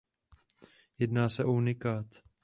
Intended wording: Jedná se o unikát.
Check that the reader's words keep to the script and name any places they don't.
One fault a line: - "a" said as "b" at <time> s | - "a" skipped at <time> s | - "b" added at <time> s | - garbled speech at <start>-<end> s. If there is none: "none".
none